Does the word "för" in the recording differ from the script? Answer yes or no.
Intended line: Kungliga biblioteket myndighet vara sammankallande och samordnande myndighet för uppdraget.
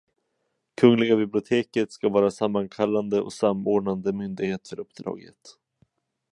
no